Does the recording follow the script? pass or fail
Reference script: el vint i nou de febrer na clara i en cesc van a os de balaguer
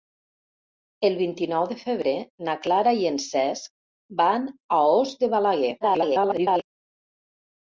fail